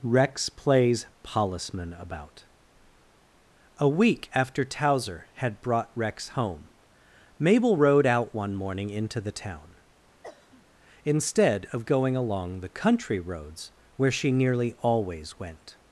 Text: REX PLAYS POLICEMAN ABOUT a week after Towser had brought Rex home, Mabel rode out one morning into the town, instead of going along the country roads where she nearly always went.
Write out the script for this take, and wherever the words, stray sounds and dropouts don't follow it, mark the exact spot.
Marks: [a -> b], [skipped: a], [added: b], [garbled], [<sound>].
REX PLAYS POLICEMAN ABOUT a week after Towser had brought Rex home, Mabel rode out one morning into the town, [cough] instead of going along the country roads where she nearly always went.